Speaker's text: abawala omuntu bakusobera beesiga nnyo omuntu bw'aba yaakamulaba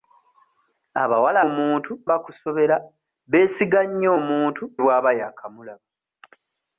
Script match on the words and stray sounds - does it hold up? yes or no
yes